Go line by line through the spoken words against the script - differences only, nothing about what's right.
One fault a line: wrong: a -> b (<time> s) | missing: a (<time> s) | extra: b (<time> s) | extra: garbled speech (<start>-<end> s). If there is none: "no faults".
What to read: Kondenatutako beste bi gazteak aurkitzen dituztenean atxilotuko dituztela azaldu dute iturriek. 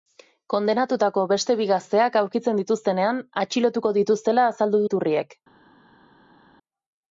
missing: dute (4.8 s)